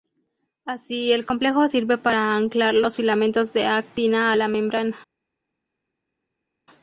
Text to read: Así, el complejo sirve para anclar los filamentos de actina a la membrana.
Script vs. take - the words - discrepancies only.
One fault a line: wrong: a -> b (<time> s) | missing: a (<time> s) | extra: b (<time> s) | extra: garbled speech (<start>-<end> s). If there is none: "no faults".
no faults